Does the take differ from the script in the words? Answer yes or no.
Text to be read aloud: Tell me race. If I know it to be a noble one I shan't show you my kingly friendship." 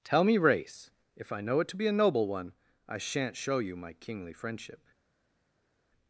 no